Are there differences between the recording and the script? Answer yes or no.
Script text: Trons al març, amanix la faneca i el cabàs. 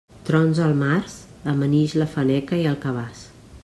no